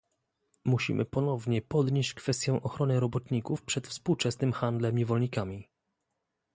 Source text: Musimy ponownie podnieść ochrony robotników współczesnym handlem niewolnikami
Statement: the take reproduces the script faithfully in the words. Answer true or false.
false